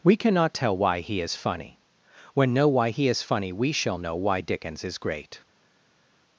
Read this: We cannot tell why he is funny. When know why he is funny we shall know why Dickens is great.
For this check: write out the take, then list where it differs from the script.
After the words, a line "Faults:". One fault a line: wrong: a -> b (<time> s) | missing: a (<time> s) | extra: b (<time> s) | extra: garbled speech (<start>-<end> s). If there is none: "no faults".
We cannot tell why he is funny. When know why he is funny we shall know why Dickens is great.
Faults:
no faults